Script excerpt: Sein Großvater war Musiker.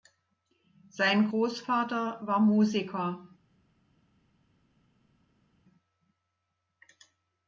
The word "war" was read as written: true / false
true